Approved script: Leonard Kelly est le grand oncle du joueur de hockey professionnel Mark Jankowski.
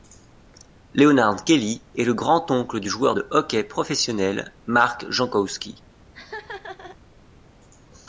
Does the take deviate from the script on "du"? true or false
false